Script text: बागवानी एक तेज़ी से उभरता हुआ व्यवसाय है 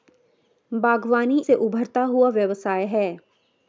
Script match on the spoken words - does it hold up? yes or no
no